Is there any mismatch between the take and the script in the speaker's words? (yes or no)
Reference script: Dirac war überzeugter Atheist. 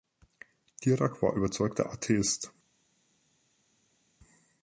no